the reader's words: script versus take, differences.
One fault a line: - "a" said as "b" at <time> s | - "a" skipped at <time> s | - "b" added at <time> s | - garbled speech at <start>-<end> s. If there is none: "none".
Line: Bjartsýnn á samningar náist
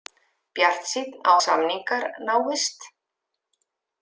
none